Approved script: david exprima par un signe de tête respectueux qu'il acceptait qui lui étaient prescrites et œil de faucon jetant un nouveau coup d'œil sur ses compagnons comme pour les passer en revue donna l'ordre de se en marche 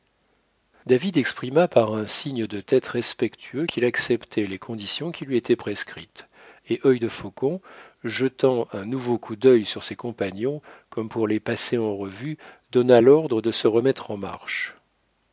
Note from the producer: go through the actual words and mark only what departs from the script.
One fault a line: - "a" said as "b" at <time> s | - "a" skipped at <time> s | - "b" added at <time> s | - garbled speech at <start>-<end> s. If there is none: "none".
- "les conditions" added at 4.5 s
- "remettre" added at 13.7 s